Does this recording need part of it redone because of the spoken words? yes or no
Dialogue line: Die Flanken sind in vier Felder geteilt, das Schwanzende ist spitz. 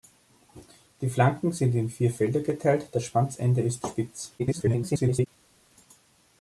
yes